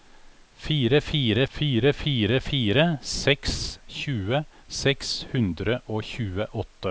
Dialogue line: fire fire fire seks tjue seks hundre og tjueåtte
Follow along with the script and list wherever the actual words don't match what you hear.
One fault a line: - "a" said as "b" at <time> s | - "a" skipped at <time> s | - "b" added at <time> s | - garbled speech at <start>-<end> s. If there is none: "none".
- "fire fire" added at 1.9 s